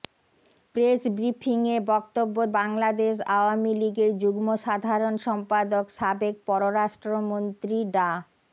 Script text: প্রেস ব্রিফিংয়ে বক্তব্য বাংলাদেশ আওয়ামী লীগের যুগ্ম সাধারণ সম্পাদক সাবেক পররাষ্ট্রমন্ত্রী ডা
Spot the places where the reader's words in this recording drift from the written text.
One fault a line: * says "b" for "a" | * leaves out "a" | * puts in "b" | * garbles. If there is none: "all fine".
all fine